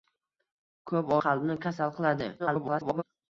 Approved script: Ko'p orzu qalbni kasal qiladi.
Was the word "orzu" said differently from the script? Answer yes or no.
yes